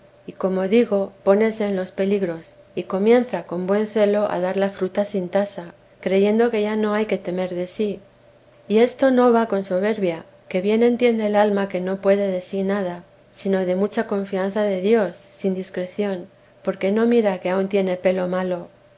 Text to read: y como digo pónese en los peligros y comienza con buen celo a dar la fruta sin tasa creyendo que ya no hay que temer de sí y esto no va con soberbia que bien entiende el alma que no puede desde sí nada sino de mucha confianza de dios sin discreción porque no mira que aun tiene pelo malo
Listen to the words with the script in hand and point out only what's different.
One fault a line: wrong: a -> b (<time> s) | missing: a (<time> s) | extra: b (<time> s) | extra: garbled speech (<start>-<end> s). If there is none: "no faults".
wrong: desde -> de (12.3 s)